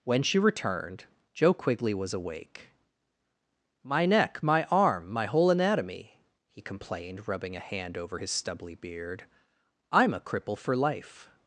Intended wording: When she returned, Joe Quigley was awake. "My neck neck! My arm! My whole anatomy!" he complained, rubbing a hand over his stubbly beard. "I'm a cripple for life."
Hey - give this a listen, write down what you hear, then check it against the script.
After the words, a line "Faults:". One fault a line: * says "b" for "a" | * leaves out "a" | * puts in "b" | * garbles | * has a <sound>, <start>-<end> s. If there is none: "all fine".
When she returned, Joe Quigley was awake. "My neck! My arm! My whole anatomy!" he complained, rubbing a hand over his stubbly beard. "I'm a cripple for life."
Faults:
* leaves out "neck"